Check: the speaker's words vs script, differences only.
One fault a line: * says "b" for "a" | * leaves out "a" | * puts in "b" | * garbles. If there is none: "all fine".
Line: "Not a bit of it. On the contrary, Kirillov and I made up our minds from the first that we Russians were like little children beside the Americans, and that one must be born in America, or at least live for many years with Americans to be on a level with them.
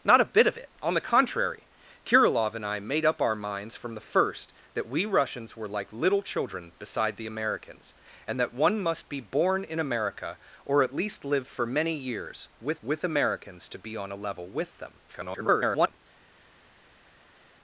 * puts in "with"
* garbles